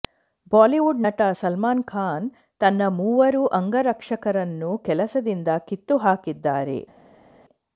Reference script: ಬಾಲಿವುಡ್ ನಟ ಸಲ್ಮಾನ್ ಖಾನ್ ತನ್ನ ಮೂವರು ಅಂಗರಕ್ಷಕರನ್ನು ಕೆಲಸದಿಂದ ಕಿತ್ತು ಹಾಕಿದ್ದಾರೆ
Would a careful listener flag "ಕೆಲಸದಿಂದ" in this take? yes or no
no